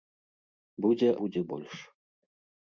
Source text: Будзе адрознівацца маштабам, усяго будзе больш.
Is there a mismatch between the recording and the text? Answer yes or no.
yes